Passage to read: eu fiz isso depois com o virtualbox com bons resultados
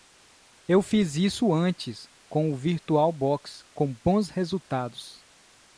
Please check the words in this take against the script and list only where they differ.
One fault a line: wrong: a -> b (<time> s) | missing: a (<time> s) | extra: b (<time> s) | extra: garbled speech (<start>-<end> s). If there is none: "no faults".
wrong: depois -> antes (1.5 s)